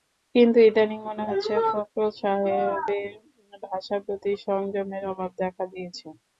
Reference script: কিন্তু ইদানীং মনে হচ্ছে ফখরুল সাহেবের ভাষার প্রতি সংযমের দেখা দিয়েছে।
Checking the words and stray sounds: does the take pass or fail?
fail